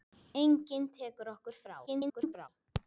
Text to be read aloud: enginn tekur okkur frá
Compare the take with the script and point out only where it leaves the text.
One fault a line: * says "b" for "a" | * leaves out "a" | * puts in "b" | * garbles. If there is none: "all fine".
* garbles